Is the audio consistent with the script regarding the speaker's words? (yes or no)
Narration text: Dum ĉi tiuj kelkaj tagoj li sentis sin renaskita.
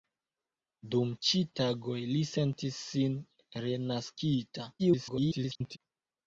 no